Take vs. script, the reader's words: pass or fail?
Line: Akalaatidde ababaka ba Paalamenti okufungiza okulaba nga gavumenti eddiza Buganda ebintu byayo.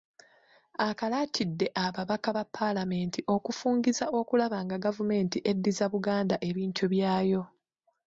pass